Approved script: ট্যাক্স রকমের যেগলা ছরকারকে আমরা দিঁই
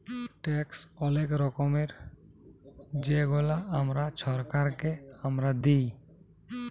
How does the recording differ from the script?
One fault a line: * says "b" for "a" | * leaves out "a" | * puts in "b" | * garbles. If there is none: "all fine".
* puts in "অলেক"
* puts in "আমরা"